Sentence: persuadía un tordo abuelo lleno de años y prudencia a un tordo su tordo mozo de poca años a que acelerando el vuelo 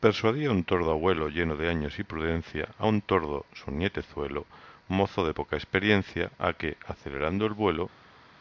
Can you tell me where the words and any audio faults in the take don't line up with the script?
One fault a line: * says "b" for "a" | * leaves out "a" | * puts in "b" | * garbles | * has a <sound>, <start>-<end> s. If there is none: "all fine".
* says "nietezuelo" for "tordo"
* says "experiencia" for "años"